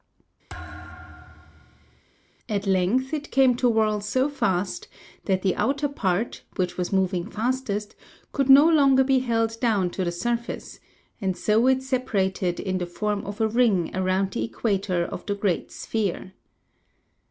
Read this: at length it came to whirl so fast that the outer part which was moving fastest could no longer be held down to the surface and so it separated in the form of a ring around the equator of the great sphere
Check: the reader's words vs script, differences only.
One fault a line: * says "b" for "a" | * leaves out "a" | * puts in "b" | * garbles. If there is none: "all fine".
all fine